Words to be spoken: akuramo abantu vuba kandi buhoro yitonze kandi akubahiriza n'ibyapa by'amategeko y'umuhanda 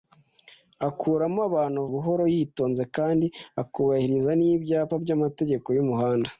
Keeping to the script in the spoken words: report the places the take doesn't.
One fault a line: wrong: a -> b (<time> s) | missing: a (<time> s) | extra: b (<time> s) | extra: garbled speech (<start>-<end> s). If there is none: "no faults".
missing: vuba kandi (1.8 s)